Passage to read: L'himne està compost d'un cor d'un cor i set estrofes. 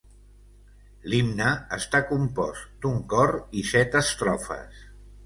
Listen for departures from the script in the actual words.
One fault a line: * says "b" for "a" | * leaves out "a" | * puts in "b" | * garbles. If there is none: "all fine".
* leaves out "d'un cor"